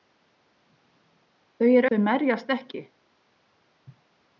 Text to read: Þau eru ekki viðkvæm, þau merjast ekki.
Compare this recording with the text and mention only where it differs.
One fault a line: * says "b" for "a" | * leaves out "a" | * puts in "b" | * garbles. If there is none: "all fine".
* leaves out "ekki viðkvæm"